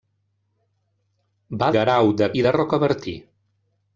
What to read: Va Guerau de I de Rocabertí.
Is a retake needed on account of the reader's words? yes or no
no